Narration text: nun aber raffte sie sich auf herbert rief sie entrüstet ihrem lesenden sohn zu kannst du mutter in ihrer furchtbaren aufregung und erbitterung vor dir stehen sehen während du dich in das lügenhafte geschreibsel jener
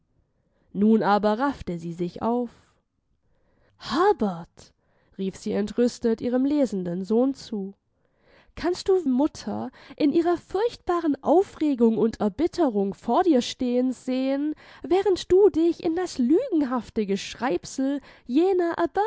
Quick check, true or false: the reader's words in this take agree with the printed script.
true